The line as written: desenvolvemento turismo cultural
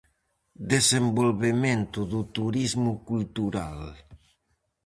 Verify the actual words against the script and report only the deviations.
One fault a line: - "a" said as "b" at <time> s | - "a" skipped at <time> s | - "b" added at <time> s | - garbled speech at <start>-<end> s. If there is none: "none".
- "do" added at 2.1 s